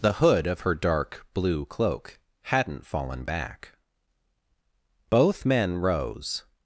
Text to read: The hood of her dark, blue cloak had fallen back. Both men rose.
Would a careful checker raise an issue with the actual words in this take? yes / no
yes